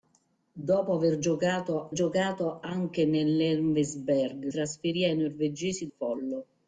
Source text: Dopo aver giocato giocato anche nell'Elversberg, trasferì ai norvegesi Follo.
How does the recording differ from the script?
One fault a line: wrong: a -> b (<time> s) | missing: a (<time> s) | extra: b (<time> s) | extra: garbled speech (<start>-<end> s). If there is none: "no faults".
no faults